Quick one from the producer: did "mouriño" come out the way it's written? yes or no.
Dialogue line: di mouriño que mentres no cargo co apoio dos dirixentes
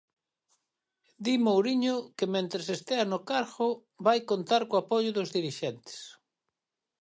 yes